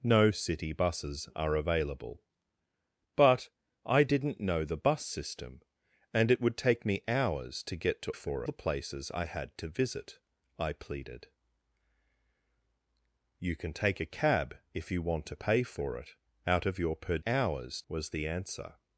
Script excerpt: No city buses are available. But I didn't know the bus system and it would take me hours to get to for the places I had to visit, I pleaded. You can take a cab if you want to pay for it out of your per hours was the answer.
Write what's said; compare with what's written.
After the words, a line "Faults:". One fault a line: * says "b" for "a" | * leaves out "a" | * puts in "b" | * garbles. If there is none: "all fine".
No city buses are available. But I didn't know the bus system and it would take me hours to get to for the places I had to visit, I pleaded. You can take a cab if you want to pay for it out of your per hours was the answer.
Faults:
all fine